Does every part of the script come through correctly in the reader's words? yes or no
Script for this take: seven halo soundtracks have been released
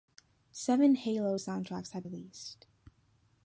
no